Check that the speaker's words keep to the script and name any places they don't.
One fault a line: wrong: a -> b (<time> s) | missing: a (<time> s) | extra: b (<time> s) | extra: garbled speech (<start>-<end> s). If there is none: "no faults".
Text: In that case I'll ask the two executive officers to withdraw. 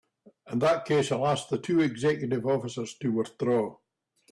no faults